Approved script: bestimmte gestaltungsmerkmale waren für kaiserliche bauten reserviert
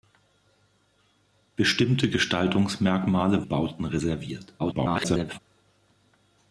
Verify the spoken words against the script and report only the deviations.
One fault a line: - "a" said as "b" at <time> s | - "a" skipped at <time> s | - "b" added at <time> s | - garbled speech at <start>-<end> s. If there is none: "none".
- "waren für kaiserliche" skipped at 3.5 s
- garbled speech at 4.6-5.4 s